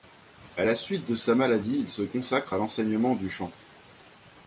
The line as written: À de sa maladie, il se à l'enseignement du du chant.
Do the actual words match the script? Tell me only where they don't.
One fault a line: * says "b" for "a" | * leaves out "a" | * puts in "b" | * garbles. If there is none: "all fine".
* puts in "la suite"
* puts in "consacre"
* leaves out "du"